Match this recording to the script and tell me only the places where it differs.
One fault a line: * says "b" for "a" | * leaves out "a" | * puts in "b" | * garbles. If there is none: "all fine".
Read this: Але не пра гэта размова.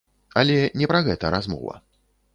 all fine